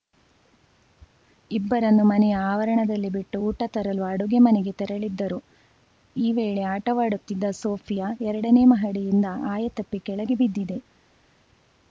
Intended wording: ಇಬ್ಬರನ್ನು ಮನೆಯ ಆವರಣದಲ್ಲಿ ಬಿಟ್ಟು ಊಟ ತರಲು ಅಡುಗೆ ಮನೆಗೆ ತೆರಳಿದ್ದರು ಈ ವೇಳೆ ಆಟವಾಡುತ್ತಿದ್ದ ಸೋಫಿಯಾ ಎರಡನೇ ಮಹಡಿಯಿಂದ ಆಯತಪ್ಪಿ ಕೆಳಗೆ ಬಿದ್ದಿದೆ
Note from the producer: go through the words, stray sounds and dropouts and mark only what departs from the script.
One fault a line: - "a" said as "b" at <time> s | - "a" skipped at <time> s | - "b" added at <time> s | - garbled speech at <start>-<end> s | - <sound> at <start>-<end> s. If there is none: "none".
none